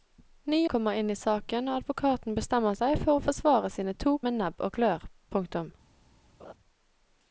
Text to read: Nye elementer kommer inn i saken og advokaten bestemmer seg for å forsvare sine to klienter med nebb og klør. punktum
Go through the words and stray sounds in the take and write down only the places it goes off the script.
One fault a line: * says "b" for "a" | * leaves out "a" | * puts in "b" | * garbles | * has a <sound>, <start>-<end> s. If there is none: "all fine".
* leaves out "elementer"
* leaves out "klienter"
* has a laugh, 6.4-6.5 s